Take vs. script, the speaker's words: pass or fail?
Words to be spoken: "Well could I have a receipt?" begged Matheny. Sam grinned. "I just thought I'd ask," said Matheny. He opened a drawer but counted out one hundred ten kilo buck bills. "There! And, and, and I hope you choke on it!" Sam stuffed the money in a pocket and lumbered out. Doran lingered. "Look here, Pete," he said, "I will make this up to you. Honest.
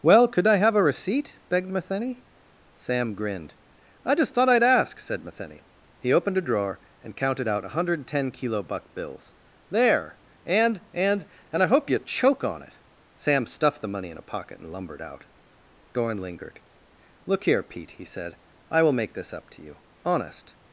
fail